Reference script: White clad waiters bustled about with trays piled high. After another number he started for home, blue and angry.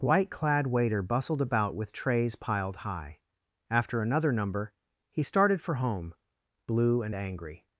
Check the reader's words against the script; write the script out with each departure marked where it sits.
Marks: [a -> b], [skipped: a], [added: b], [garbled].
White clad [waiters -> waiter] bustled about with trays piled high. After another number he started for home, blue and angry.